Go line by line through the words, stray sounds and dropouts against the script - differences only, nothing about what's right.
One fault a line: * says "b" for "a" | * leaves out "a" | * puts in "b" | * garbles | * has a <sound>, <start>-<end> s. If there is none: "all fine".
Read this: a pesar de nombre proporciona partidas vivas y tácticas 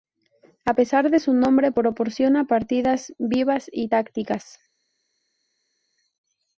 * puts in "su"